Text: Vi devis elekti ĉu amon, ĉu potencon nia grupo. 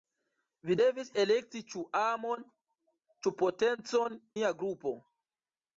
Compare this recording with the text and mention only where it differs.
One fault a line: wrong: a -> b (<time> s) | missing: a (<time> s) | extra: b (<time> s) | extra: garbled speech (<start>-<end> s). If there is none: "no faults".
no faults